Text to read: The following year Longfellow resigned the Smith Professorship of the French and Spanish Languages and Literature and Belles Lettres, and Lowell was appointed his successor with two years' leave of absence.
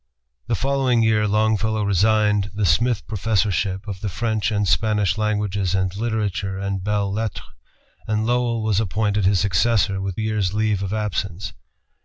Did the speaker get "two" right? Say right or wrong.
wrong